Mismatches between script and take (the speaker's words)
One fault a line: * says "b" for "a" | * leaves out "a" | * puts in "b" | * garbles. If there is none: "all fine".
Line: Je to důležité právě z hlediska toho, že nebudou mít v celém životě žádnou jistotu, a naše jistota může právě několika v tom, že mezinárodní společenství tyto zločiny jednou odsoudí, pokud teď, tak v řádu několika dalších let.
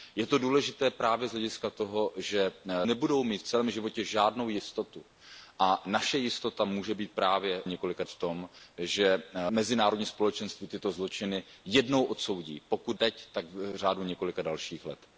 all fine